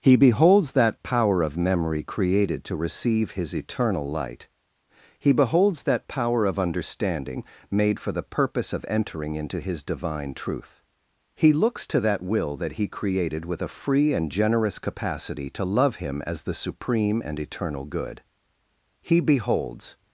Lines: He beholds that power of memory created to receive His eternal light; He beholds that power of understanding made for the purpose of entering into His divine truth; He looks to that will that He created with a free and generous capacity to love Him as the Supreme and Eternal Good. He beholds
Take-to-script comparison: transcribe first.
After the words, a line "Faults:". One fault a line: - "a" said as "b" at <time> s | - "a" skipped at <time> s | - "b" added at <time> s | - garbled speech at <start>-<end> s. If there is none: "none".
He beholds that power of memory created to receive His eternal light; He beholds that power of understanding made for the purpose of entering into His divine truth; He looks to that will that He created with a free and generous capacity to love Him as the Supreme and Eternal Good. He beholds
Faults:
none